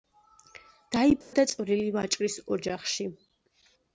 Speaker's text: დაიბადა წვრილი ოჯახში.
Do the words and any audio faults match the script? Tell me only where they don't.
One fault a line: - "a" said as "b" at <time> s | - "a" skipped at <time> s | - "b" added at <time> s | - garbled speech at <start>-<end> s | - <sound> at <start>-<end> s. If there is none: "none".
- dropout at 1.2-1.3 s
- "ვაჭრის" added at 2.0 s